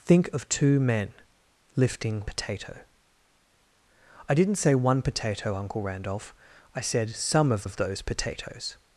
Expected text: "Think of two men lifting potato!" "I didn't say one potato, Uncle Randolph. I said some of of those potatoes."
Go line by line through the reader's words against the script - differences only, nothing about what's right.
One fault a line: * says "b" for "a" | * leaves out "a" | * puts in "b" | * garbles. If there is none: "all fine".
all fine